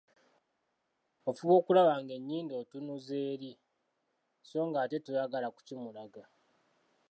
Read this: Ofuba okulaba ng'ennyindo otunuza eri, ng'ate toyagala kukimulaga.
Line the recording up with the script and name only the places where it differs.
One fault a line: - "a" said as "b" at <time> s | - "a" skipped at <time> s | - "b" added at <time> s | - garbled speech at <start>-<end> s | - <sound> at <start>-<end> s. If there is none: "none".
- "so" added at 4.5 s